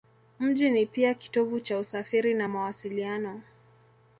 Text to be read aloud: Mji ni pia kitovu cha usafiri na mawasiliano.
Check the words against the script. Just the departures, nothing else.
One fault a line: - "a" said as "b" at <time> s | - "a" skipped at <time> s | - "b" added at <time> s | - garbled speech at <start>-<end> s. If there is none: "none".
none